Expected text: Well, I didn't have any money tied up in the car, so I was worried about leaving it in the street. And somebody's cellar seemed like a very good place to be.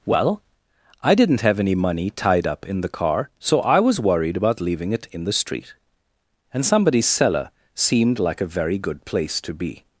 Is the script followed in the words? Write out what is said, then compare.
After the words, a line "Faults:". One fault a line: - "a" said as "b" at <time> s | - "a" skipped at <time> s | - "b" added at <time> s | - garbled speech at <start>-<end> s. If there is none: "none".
Well, I didn't have any money tied up in the car, so I was worried about leaving it in the street. And somebody's cellar seemed like a very good place to be.
Faults:
none